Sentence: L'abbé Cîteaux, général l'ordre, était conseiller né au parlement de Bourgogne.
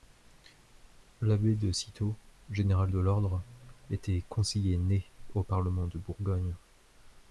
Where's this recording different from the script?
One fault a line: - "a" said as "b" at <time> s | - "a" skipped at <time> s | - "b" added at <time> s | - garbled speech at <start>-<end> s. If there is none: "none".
- "de" added at 1.6 s
- "de" added at 2.9 s